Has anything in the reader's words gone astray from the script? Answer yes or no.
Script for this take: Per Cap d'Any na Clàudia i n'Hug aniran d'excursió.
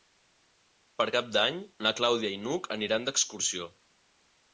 no